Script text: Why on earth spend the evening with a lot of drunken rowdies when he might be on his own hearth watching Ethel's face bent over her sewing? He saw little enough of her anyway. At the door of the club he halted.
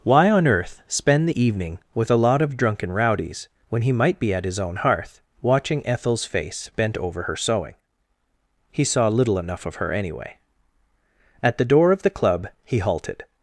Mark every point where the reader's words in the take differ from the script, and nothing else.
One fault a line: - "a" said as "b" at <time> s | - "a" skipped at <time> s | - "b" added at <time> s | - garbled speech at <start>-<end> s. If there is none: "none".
- "on" said as "at" at 4.3 s